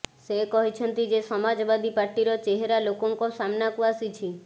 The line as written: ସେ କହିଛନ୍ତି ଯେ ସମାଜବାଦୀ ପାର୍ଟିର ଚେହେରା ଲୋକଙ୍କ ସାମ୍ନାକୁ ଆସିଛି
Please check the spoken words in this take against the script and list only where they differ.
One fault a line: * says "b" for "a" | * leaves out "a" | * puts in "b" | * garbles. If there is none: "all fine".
all fine